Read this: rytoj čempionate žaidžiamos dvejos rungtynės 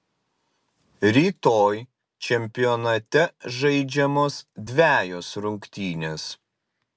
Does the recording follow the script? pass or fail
pass